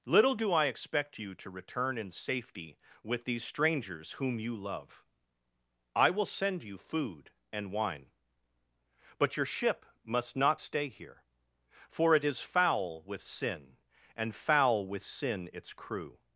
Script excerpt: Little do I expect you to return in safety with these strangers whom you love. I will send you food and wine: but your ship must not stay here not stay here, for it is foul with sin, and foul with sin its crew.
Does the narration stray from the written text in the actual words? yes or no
yes